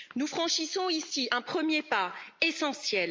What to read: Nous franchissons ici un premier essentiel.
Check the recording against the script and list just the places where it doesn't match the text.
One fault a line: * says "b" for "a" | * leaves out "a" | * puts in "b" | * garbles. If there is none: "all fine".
* puts in "pas"